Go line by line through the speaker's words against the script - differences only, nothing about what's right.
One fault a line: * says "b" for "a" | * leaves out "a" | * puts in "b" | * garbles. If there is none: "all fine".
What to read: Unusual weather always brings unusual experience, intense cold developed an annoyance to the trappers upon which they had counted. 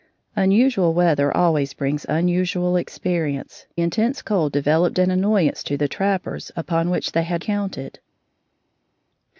all fine